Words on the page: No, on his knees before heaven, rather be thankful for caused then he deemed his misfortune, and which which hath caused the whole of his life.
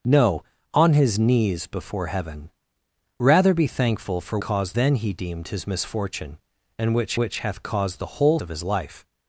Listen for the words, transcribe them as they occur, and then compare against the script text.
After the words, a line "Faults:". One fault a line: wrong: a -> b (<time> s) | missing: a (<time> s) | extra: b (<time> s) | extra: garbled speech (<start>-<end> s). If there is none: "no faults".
No, on his knees before heaven, rather be thankful for caused then he deemed his misfortune, and which which hath caused the whole of his life.
Faults:
no faults